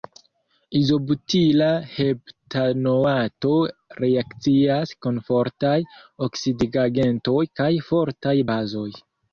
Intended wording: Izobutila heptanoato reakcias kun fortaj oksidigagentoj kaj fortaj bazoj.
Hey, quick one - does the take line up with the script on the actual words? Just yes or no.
yes